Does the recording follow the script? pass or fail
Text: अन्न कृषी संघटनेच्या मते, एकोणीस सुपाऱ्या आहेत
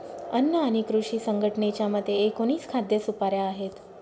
fail